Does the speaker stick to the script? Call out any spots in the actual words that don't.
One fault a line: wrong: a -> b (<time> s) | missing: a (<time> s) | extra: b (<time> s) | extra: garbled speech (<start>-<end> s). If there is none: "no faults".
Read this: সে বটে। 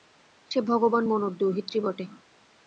extra: ভগবান মনুর দৌহিত্রী (0.6 s)